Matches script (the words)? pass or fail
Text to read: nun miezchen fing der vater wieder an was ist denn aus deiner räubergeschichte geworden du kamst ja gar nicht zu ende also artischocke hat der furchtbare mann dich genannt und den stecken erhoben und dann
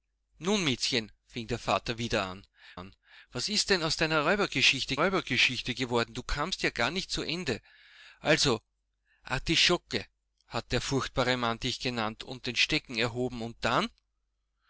fail